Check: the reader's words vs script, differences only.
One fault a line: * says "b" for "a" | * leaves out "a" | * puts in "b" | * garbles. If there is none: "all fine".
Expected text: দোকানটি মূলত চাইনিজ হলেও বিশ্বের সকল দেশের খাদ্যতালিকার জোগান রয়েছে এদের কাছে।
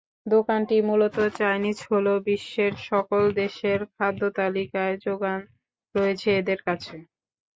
all fine